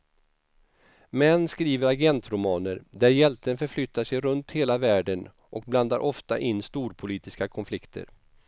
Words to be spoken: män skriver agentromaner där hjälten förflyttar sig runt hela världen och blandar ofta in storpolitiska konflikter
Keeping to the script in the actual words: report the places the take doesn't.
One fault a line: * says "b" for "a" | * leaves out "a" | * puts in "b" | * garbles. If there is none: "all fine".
all fine